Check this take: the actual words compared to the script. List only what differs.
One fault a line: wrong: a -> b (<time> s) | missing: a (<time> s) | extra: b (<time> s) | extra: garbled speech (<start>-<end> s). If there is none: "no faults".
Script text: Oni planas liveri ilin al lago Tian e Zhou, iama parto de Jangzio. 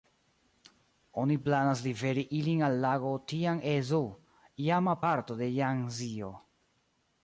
no faults